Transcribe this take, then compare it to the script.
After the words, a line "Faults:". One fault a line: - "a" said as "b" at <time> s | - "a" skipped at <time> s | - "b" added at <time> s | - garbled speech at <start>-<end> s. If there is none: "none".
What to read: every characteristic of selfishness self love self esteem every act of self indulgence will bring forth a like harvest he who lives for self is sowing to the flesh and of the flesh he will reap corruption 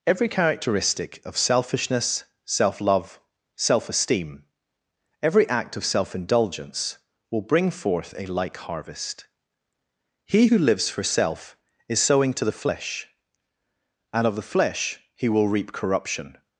every characteristic of selfishness self love self esteem every act of self indulgence will bring forth a like harvest he who lives for self is sowing to the flesh and of the flesh he will reap corruption
Faults:
none